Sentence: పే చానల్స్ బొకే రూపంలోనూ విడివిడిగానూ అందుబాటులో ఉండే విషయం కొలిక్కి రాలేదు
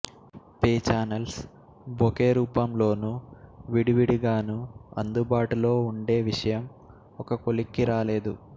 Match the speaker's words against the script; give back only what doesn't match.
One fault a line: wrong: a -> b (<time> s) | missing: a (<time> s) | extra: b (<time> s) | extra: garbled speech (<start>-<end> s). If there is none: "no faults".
extra: ఒక (7.2 s)